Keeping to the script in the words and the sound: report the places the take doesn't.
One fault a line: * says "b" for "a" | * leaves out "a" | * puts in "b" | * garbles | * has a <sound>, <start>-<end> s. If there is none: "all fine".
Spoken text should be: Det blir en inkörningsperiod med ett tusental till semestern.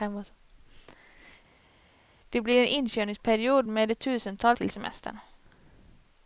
all fine